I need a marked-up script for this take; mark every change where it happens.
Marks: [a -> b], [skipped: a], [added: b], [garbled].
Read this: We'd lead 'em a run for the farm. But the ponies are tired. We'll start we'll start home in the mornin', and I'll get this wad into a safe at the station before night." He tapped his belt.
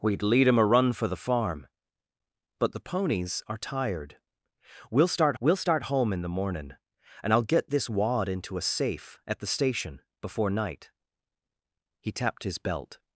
We'd lead 'em a run for the farm. But the ponies are tired. We'll start we'll start home in the mornin', and I'll get this wad into a safe at the station before night." He tapped his belt.